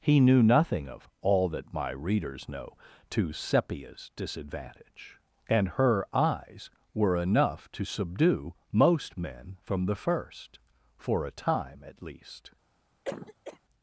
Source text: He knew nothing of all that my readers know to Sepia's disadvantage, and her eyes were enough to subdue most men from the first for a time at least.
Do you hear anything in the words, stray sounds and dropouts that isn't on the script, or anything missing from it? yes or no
yes